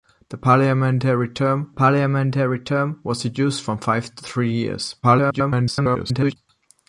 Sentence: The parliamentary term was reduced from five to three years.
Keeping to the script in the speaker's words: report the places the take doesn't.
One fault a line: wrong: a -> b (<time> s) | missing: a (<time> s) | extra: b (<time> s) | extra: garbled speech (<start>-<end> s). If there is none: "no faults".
extra: parliamentary term (1.7 s)
extra: garbled speech (5.0-6.4 s)